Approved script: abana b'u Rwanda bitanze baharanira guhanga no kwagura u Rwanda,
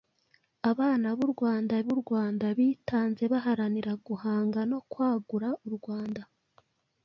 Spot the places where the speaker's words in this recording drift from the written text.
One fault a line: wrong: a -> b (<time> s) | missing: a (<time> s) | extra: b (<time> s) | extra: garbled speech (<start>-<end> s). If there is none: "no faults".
extra: b'u Rwanda (1.8 s)